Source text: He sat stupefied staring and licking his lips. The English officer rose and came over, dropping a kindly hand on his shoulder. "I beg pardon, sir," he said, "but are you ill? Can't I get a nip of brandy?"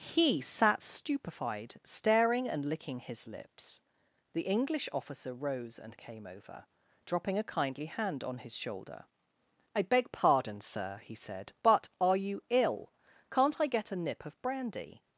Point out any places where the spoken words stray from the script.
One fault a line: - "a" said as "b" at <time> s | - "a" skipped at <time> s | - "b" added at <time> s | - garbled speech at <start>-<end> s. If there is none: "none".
none